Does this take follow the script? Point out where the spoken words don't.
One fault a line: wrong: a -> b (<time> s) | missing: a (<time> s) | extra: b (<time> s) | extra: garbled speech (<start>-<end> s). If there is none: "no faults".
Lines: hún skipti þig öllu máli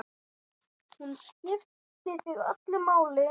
no faults